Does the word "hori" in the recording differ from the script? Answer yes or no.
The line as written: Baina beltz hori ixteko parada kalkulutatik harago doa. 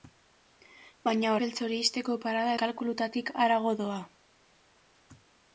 no